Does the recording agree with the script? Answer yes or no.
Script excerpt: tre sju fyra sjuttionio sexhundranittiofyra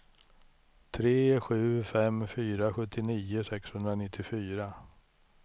no